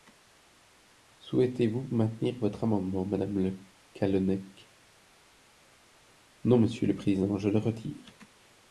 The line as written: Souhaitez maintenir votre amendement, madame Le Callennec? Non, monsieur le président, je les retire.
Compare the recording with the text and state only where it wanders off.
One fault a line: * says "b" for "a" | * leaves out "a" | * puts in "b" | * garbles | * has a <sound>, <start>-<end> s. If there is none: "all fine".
* puts in "vous"
* says "le" for "les"